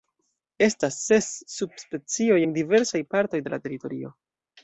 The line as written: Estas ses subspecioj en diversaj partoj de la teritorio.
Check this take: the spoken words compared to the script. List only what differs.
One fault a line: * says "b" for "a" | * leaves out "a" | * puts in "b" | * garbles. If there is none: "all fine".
all fine